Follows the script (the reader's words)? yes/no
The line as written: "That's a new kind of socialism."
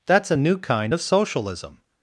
yes